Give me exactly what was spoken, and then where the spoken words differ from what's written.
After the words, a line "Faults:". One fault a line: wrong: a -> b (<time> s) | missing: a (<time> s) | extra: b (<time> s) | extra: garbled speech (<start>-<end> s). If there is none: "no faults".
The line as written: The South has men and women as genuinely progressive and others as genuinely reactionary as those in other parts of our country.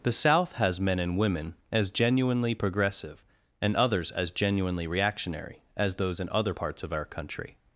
The South has men and women as genuinely progressive and others as genuinely reactionary as those in other parts of our country.
Faults:
no faults